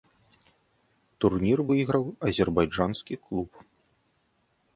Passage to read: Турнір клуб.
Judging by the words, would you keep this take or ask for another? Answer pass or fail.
fail